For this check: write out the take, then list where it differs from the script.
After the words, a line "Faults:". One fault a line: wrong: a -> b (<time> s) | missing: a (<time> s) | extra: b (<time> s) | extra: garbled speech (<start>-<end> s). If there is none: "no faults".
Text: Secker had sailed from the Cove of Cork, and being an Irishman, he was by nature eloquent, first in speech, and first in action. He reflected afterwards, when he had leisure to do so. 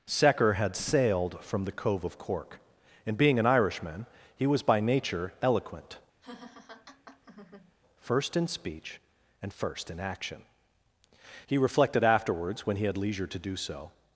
Secker had sailed from the Cove of Cork, and being an Irishman, he was by nature eloquent, first in speech, and first in action. He reflected afterwards, when he had leisure to do so.
Faults:
no faults